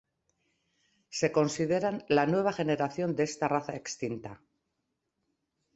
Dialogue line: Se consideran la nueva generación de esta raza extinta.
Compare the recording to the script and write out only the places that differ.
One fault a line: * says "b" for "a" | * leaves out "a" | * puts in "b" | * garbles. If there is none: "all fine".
all fine